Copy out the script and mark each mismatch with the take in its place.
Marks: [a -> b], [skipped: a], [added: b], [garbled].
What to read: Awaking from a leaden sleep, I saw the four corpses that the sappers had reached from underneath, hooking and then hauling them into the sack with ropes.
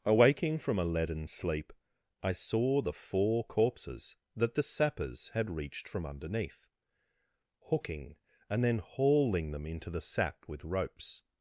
Awaking from a leaden sleep, I saw the four corpses that the sappers had reached from underneath, hooking and then hauling them into the sack with ropes.